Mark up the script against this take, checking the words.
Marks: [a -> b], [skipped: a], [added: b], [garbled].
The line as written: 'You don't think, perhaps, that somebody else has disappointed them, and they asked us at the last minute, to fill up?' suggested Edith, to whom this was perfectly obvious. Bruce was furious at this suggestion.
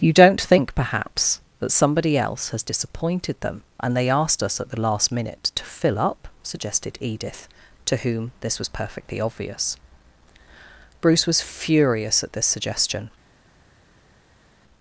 'You don't think, perhaps, that somebody else has disappointed them, and they asked us at the last minute, to fill up?' suggested Edith, to whom this was perfectly obvious. Bruce was furious at this suggestion.